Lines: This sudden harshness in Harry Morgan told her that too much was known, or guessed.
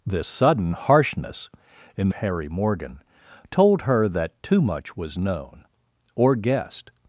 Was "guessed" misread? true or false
false